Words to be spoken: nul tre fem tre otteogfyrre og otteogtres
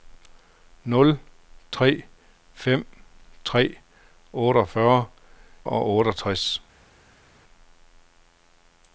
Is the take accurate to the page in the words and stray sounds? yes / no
yes